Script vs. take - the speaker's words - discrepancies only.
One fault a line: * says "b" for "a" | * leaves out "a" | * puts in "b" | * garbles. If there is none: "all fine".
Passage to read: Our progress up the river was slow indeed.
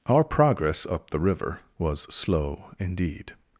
all fine